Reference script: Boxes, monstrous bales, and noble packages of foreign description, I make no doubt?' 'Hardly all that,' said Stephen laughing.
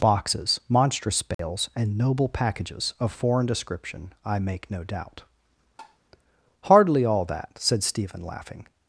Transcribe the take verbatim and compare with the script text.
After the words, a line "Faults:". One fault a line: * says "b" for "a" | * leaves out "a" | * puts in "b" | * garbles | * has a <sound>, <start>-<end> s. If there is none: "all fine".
Boxes, monstrous bales, and noble packages of foreign description, I make no doubt?' 'Hardly all that,' said Stephen laughing.
Faults:
* has a dropout, 1.3-1.4 s
* has a tap, 5.8-6.0 s